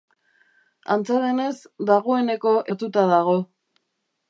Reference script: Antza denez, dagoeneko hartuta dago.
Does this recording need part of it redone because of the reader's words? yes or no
no